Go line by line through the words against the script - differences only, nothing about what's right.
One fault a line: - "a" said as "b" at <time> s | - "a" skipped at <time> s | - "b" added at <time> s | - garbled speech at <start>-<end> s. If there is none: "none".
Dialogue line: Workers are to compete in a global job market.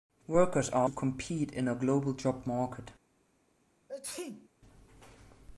none